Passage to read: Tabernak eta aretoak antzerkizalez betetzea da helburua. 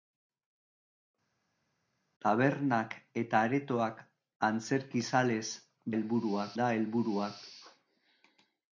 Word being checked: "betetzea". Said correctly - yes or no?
no